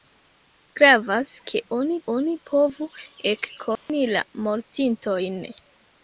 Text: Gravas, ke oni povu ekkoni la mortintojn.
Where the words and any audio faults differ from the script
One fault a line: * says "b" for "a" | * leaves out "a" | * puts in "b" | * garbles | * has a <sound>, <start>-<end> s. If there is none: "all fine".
* puts in "oni"
* has a dropout, 3.8-3.9 s